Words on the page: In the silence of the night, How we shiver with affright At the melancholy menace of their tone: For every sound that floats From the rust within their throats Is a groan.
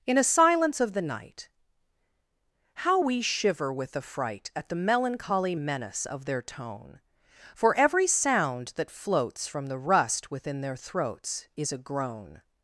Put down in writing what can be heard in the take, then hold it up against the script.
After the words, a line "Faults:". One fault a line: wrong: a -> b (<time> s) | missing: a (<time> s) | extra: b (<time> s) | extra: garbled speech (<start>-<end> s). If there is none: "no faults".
In a silence of the night, How we shiver with affright At the melancholy menace of their tone: For every sound that floats From the rust within their throats Is a groan.
Faults:
wrong: the -> a (0.2 s)